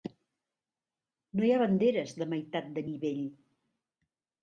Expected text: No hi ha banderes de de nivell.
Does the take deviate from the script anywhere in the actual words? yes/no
yes